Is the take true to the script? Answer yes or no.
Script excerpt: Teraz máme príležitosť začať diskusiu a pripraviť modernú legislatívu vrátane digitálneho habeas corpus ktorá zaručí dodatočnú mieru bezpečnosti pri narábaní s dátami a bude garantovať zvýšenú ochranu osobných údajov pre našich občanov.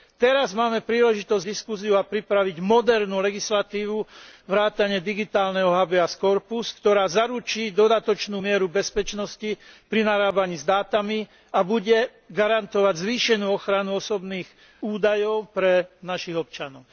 no